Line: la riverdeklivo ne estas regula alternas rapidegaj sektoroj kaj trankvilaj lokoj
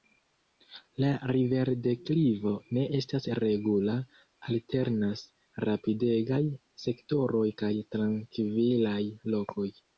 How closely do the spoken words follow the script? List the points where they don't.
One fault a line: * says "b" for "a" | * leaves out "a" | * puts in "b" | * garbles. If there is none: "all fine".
all fine